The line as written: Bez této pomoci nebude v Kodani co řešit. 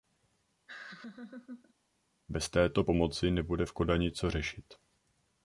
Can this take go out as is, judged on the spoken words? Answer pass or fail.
pass